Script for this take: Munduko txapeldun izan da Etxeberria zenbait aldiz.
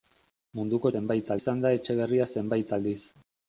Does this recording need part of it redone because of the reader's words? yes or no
yes